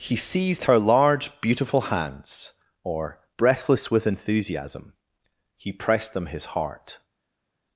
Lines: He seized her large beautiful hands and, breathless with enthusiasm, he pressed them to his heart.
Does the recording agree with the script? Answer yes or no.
no